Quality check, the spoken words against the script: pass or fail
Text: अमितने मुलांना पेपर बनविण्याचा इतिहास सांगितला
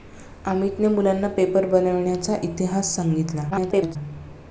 fail